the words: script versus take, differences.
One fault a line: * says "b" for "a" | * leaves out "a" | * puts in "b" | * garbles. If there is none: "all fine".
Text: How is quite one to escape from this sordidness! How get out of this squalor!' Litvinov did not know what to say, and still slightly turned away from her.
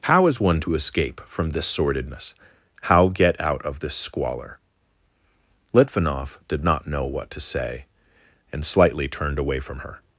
* leaves out "quite"
* leaves out "still"